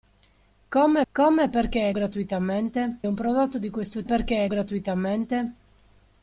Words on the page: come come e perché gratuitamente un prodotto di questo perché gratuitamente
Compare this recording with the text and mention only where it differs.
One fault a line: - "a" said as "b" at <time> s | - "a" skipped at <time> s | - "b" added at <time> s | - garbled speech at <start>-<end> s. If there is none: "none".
none